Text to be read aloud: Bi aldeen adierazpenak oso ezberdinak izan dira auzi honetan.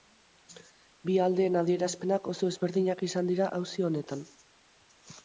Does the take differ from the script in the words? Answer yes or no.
no